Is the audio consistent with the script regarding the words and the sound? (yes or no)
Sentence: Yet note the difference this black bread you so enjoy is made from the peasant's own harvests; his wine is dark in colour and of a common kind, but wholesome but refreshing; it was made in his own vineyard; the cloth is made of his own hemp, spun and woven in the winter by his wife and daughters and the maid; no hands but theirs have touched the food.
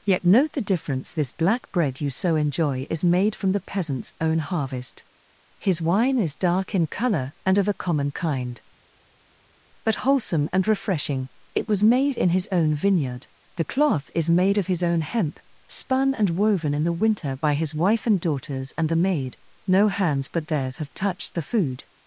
no